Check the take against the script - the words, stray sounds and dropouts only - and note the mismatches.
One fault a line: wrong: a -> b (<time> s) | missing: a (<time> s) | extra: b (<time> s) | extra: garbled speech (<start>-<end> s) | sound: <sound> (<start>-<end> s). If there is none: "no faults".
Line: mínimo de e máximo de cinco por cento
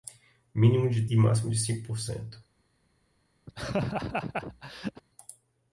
sound: laugh (3.5-5.0 s)